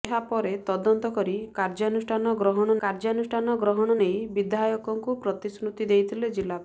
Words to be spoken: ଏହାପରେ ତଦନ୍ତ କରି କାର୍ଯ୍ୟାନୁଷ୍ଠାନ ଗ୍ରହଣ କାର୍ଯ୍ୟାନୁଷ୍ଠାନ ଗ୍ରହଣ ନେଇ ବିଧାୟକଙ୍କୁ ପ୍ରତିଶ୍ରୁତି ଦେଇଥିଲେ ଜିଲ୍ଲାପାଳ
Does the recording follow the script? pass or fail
pass